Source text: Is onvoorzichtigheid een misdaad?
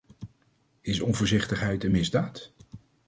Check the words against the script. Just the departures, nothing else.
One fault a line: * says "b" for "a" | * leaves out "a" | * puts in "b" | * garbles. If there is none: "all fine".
all fine